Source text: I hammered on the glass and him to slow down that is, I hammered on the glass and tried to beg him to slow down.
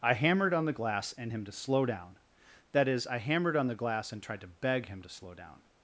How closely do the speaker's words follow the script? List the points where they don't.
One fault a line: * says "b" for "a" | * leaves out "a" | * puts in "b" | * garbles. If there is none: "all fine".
all fine